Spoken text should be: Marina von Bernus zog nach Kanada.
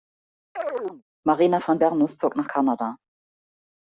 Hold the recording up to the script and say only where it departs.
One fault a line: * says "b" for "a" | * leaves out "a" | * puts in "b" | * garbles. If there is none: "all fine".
all fine